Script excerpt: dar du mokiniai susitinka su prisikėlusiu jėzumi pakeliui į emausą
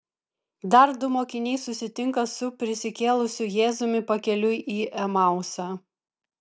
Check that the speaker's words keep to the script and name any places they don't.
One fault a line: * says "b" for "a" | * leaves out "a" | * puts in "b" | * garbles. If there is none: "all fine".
all fine